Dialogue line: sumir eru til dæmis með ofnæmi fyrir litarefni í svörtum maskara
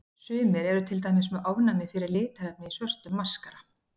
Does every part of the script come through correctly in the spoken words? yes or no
yes